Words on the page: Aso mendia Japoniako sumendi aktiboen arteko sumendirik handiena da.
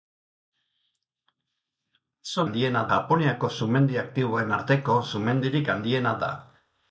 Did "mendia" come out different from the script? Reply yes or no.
yes